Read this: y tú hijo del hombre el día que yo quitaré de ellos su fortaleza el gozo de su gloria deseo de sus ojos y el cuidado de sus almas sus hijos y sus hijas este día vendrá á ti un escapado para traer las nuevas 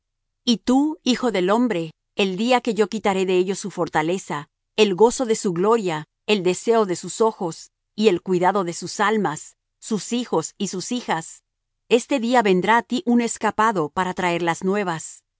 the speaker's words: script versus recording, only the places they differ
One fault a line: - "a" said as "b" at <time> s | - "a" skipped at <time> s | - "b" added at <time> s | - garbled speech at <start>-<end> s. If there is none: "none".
- "el" added at 6.3 s